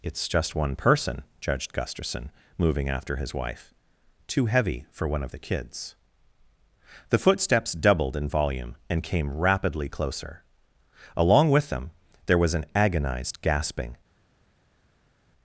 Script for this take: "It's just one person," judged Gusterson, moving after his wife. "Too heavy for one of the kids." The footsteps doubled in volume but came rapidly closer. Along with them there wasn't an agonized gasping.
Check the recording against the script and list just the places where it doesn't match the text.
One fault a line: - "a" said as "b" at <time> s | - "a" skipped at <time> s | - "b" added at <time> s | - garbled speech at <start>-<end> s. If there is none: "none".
- "but" said as "and" at 8.9 s
- "wasn't" said as "was" at 12.4 s